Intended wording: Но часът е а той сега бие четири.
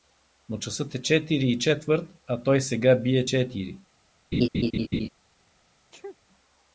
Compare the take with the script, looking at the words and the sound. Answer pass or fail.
fail